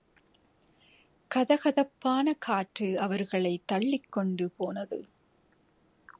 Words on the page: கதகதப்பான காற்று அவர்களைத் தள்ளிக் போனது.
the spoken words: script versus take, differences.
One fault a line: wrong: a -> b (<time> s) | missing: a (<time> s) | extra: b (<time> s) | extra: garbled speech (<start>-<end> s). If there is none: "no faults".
extra: கொண்டு (4.1 s)